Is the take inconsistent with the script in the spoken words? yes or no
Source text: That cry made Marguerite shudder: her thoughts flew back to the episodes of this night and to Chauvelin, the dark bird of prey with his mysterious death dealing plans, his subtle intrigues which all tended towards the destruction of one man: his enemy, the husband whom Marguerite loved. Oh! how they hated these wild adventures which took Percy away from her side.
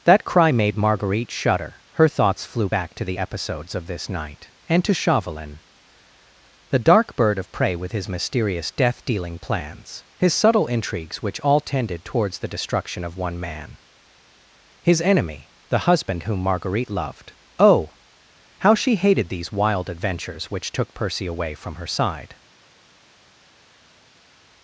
yes